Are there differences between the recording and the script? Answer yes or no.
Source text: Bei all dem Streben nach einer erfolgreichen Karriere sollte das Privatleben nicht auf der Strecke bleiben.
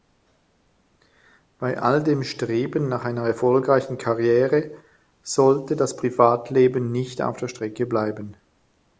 no